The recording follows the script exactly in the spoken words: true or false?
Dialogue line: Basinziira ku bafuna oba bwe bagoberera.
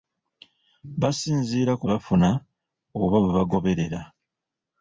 true